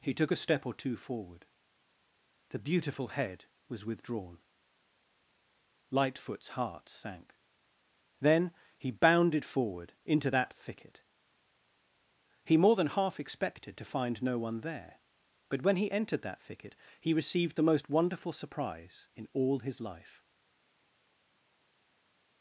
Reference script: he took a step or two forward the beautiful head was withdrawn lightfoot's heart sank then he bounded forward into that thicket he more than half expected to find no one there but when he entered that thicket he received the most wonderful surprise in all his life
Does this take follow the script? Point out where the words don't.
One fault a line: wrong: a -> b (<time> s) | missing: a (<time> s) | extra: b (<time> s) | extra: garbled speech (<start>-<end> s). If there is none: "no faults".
no faults